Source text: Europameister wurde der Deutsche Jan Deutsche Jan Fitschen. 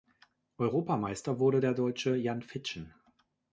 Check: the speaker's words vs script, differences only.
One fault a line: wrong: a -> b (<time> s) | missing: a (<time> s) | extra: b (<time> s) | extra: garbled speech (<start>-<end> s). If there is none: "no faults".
missing: Deutsche Jan (2.4 s)